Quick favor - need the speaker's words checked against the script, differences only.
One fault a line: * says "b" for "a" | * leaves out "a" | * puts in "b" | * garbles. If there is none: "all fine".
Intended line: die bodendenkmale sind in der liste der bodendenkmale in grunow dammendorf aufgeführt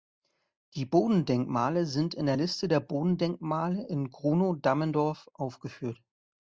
all fine